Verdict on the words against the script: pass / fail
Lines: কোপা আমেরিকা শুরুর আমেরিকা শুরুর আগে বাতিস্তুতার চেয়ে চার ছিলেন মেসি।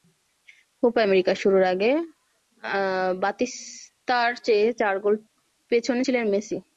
fail